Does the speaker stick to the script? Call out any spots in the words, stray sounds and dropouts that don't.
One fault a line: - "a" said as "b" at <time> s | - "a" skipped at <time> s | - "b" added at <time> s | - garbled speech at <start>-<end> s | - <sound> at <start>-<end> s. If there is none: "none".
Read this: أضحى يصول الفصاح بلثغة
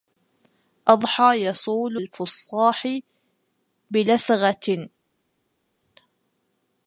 none